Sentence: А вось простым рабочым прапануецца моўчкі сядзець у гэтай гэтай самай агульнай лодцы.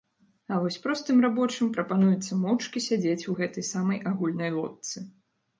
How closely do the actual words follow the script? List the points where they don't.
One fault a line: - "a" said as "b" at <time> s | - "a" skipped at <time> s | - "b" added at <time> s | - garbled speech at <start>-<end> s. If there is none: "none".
- "гэтай" skipped at 3.7 s